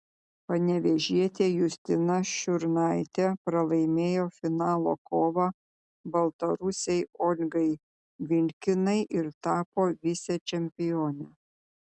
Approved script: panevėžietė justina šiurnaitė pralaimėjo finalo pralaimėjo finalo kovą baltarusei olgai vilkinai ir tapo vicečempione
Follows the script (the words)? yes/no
no